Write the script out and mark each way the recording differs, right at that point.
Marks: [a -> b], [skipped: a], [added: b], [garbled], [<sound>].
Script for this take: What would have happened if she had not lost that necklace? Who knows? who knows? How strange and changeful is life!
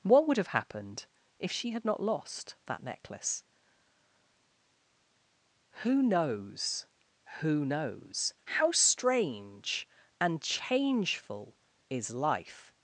What would have happened if she had not lost that necklace? Who knows? who knows? How strange and changeful is life!